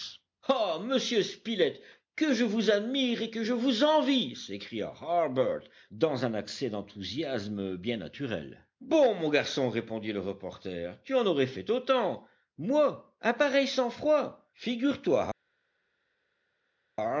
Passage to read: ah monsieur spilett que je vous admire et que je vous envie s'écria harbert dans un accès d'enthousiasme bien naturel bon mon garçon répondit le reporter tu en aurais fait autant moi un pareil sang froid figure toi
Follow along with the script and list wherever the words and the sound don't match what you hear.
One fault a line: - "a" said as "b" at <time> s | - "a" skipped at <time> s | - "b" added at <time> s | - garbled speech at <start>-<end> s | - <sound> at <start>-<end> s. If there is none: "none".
none